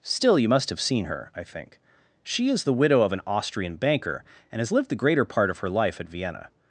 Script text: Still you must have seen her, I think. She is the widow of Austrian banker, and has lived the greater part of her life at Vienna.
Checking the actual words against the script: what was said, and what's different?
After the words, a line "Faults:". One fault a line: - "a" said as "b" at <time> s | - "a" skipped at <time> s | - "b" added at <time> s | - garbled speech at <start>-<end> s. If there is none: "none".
Still you must have seen her, I think. She is the widow of an Austrian banker, and has lived the greater part of her life at Vienna.
Faults:
- "an" added at 3.1 s